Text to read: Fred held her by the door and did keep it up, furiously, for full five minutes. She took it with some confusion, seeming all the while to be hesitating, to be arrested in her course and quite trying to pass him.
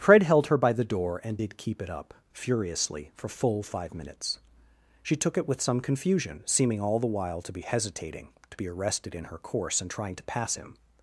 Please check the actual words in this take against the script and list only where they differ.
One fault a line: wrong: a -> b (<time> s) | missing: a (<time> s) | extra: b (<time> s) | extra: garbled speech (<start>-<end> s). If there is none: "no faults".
missing: quite (9.9 s)